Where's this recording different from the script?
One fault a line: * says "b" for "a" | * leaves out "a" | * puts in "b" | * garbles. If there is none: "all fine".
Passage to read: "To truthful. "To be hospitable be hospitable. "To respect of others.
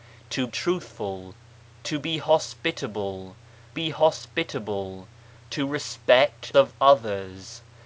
all fine